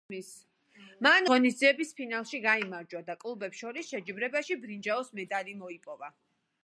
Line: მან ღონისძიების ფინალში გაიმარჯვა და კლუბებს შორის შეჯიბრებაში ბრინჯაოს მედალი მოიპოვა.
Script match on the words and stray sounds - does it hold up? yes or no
yes